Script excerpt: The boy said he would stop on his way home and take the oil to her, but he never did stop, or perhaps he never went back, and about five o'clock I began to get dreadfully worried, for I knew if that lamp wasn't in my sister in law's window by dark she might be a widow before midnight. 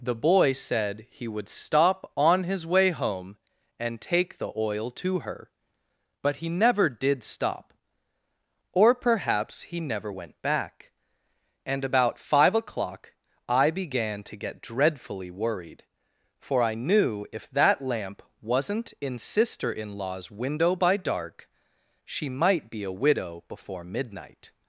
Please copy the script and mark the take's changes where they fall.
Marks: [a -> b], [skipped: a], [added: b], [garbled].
The boy said he would stop on his way home and take the oil to her, but he never did stop, or perhaps he never went back, and about five o'clock I began to get dreadfully worried, for I knew if that lamp wasn't in [skipped: my] sister in law's window by dark she might be a widow before midnight.